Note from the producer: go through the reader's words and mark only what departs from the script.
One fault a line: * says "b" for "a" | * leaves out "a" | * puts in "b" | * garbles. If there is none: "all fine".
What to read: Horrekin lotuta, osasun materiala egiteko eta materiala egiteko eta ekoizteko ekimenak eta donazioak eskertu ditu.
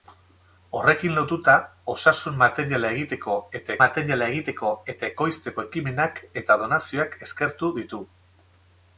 all fine